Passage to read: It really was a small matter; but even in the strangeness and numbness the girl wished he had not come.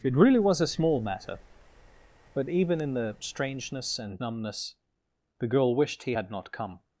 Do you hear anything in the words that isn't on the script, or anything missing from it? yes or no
no